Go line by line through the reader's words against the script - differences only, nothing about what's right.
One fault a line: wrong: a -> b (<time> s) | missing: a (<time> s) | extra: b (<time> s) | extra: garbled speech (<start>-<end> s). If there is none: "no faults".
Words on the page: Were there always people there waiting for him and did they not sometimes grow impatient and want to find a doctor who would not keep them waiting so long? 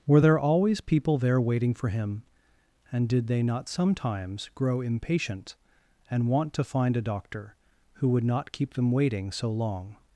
no faults